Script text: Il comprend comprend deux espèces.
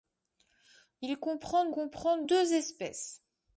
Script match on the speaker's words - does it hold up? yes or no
yes